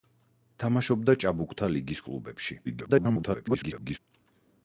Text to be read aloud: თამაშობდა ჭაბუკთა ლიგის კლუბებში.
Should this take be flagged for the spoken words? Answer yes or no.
yes